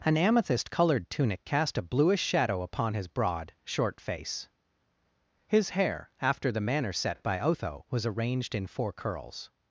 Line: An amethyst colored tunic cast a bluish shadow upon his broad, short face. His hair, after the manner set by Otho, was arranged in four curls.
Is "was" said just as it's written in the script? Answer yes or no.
yes